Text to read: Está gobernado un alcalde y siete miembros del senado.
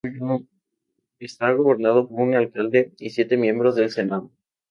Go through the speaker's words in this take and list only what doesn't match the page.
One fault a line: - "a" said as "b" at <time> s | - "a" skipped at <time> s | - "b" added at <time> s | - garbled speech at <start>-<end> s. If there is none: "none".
none